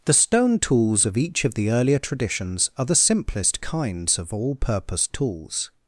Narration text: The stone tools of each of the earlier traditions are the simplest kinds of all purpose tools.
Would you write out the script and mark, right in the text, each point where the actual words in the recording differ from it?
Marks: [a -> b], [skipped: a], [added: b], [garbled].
The stone tools of each of the earlier traditions are the simplest kinds of all purpose tools.